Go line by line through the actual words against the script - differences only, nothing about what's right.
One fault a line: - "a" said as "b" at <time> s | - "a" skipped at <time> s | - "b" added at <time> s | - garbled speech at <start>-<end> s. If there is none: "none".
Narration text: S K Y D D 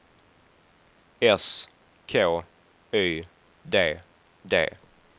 none